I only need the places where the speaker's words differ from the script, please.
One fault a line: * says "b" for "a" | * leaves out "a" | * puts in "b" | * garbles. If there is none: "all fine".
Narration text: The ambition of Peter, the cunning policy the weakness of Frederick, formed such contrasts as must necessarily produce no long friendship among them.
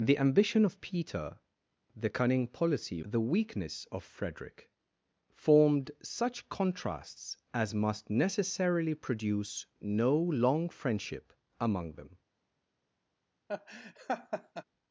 all fine